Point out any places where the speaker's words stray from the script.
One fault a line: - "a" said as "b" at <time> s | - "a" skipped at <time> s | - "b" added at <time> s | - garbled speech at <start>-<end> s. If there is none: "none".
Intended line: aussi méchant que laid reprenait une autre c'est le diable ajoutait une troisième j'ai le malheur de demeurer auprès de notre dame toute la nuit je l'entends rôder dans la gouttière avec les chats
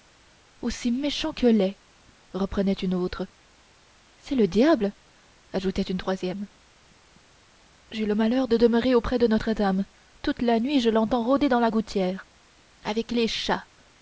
none